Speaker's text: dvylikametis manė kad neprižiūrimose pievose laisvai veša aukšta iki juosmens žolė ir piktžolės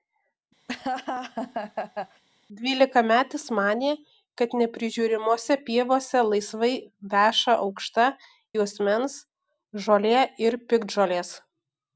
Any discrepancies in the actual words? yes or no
yes